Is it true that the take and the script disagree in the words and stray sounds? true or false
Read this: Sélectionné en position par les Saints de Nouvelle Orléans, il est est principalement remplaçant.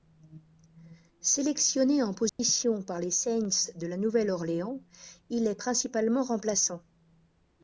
true